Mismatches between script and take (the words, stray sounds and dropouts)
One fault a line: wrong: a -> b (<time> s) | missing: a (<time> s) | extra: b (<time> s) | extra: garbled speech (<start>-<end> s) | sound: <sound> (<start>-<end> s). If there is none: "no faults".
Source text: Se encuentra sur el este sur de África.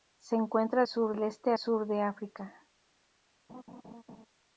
sound: laugh (3.5-4.3 s)